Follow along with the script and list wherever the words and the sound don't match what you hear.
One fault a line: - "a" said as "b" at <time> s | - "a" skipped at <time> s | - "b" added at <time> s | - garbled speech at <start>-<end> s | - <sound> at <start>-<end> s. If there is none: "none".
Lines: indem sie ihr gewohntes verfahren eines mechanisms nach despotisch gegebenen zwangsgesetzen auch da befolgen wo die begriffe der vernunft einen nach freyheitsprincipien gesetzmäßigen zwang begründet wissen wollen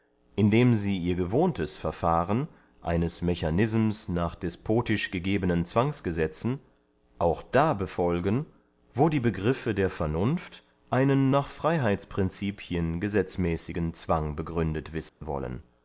- dropout at 15.1-15.2 s